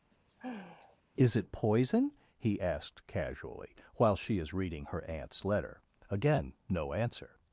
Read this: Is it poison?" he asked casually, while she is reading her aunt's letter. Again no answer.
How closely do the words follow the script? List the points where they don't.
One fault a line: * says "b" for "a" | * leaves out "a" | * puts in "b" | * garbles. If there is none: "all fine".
all fine